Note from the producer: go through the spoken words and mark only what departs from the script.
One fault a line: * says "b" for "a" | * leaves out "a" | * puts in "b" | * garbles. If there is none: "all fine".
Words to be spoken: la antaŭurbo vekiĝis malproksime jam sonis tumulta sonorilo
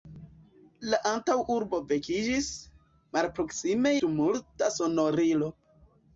* leaves out "jam sonis"